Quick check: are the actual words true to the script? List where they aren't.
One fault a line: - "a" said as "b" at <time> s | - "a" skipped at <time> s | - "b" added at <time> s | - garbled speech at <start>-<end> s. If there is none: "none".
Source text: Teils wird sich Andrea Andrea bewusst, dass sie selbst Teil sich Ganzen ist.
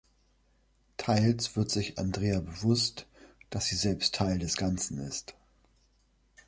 - "Andrea" skipped at 2.4 s
- "sich" said as "des" at 4.4 s